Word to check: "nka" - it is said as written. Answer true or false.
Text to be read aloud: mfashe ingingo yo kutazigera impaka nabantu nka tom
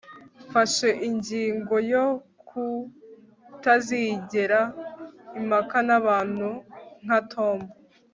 true